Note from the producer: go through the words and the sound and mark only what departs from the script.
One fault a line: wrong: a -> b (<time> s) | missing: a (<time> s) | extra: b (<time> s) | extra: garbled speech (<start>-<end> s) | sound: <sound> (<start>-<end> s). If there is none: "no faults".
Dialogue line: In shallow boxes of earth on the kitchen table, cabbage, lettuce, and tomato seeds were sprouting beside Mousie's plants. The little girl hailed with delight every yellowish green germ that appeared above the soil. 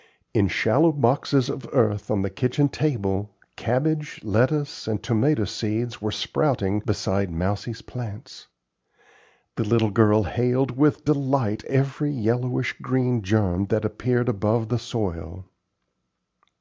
no faults